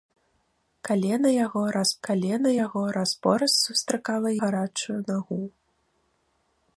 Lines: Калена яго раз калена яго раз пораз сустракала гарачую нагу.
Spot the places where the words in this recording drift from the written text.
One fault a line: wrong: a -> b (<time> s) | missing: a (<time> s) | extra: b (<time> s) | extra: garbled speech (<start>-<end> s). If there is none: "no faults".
no faults